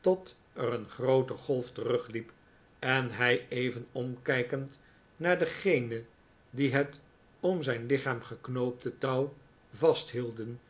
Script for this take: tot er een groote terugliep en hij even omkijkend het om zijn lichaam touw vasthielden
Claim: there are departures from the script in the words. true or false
true